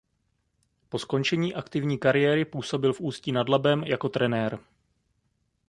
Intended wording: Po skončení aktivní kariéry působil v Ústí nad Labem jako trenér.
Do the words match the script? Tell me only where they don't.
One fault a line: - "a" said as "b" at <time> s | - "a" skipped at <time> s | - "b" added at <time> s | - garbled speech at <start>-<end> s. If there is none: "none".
none